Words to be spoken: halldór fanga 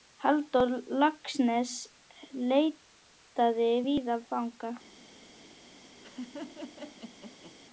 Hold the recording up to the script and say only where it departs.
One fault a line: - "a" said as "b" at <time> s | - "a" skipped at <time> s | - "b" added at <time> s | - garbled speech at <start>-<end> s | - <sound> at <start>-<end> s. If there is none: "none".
- "laxness leitaði víða" added at 1.0 s
- laugh at 6.0-7.6 s